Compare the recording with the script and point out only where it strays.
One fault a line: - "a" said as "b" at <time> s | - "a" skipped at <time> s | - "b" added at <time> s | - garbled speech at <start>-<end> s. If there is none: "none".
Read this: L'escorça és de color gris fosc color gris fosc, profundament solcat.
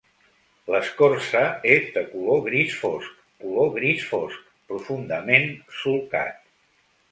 none